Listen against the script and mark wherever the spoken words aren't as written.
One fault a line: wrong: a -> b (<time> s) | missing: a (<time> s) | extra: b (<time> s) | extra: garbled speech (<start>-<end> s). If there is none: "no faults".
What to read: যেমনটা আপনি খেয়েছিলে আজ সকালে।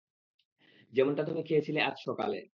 wrong: আপনি -> তুমি (1.2 s)